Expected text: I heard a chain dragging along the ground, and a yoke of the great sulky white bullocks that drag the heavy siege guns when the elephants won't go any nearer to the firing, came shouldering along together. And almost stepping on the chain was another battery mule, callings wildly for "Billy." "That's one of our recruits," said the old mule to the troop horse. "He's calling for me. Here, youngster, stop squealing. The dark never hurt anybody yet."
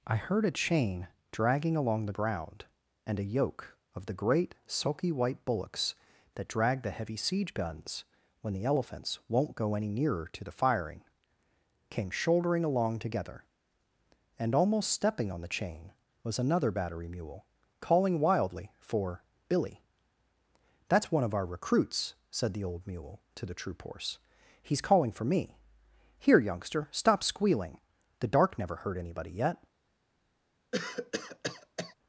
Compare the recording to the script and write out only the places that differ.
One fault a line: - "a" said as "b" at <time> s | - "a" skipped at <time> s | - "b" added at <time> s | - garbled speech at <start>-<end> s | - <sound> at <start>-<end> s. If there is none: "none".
- "callings" said as "calling" at 17.8 s
- cough at 30.7-31.9 s